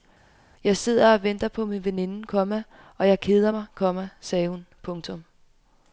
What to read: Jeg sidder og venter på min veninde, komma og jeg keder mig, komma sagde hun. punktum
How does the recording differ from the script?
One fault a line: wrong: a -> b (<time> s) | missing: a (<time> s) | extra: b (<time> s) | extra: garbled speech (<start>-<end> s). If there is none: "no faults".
no faults